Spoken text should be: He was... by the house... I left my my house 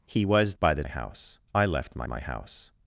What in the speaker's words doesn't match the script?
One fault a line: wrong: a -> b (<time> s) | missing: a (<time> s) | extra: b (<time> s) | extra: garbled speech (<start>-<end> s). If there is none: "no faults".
no faults